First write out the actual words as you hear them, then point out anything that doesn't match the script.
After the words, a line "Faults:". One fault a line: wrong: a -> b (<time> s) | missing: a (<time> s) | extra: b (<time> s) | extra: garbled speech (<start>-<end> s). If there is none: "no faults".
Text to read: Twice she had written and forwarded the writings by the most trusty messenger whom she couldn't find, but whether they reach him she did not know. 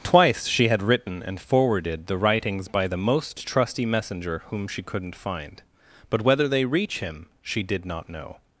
Twice she had written and forwarded the writings by the most trusty messenger whom she couldn't find, but whether they reach him she did not know.
Faults:
no faults